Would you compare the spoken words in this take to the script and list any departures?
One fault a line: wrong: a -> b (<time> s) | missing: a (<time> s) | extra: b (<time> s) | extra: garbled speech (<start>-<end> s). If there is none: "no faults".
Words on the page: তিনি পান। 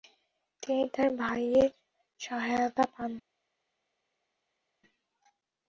extra: তার ভাইয়ের সহায়তা (0.9 s)